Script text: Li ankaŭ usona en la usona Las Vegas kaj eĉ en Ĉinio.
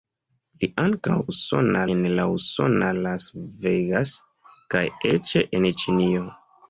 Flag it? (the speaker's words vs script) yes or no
no